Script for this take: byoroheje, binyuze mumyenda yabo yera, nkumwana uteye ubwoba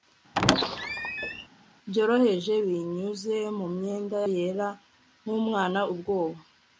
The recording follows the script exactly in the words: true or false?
false